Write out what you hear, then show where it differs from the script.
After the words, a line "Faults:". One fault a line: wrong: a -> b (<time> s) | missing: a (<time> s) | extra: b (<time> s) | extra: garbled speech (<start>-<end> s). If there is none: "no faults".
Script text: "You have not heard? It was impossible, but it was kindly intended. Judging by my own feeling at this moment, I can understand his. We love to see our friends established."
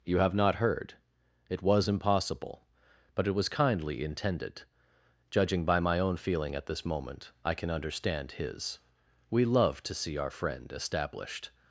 "You have not heard? It was impossible, but it was kindly intended. Judging by my own feeling at this moment, I can understand his. We love to see our friend established."
Faults:
wrong: friends -> friend (10.3 s)